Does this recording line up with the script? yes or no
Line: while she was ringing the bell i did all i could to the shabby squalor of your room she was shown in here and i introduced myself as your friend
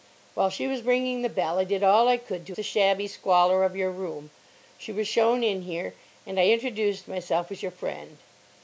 yes